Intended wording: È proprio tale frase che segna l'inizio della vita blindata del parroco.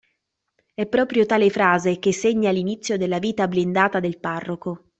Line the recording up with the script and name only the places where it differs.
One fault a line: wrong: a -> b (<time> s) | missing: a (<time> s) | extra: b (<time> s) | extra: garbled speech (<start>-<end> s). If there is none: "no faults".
no faults